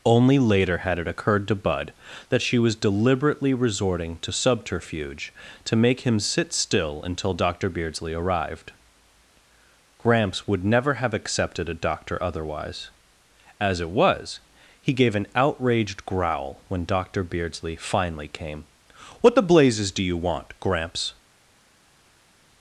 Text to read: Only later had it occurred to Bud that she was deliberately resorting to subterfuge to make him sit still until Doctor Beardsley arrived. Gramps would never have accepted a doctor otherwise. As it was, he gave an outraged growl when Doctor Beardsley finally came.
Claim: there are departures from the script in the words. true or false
true